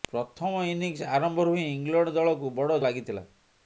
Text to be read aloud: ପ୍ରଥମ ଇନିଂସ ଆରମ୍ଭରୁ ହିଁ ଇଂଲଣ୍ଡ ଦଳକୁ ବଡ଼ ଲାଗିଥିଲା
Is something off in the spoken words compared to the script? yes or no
no